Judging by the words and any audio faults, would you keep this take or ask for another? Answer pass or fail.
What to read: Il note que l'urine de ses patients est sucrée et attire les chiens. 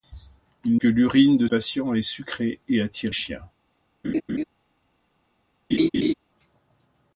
fail